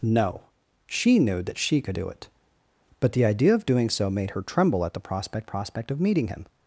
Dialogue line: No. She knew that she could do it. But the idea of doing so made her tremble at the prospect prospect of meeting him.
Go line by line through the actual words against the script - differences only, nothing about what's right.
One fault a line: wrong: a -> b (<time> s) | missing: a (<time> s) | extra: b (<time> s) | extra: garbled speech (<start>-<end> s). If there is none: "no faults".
no faults